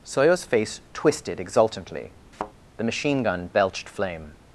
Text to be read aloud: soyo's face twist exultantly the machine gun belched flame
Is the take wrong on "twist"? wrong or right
wrong